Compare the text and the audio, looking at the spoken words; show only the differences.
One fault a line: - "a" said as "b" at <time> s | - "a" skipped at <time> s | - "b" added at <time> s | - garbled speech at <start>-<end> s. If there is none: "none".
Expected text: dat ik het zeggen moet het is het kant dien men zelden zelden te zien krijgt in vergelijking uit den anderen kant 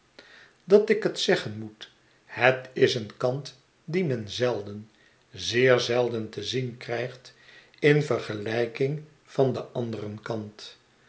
- "het" said as "een" at 3.0 s
- "zeer" added at 5.3 s
- "uit" said as "van" at 9.2 s